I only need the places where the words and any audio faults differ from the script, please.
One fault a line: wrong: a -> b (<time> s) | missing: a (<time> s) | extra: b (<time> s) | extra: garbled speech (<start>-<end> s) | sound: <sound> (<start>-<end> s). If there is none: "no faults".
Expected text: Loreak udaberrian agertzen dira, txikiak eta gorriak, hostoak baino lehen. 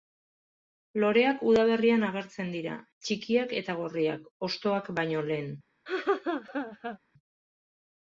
sound: laugh (5.9-7.0 s)